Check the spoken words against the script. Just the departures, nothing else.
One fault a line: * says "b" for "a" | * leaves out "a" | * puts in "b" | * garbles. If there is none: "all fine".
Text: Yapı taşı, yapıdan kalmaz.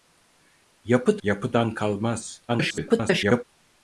* leaves out "taşı"
* garbles